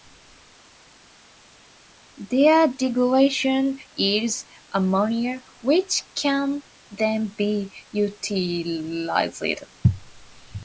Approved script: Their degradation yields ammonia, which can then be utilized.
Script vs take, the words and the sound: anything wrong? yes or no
no